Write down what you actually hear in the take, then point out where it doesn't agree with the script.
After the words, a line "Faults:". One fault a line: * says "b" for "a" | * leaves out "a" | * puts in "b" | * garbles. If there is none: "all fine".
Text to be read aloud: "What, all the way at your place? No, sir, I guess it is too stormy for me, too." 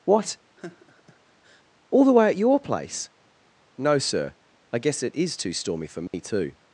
"What, all the way at your place? No, sir, I guess it is too stormy for me, too."
Faults:
all fine